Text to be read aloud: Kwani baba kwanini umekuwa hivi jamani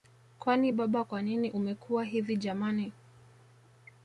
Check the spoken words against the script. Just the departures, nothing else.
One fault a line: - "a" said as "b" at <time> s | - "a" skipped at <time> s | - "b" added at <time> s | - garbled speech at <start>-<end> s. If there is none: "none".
none